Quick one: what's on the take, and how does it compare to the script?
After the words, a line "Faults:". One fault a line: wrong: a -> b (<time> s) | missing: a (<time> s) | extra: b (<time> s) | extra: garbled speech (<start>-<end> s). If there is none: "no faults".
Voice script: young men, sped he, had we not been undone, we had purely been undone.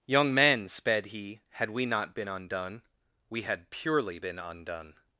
young men, sped he, had we not been undone, we had purely been undone.
Faults:
no faults